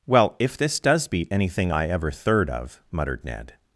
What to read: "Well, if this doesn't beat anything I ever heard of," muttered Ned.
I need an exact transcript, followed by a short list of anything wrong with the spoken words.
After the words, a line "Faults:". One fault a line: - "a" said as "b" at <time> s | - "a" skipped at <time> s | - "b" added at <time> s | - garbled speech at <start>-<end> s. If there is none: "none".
"Well, if this does beat anything I ever third of," muttered Ned.
Faults:
- "doesn't" said as "does" at 0.8 s
- "heard" said as "third" at 2.1 s